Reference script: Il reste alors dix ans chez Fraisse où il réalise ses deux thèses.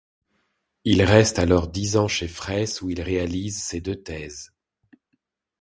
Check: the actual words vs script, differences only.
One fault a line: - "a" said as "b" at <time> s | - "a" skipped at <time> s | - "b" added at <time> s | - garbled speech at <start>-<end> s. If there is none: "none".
none